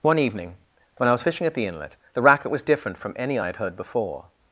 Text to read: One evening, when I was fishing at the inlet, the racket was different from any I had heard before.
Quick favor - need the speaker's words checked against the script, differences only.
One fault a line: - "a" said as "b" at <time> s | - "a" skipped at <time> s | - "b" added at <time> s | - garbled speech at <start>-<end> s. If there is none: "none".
none